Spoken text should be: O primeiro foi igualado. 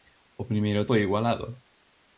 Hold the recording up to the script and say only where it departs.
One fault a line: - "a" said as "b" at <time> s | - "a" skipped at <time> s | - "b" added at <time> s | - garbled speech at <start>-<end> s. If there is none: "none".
none